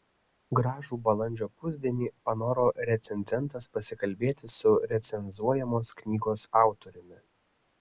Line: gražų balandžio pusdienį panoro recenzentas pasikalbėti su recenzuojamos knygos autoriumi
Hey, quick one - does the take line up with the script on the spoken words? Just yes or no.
yes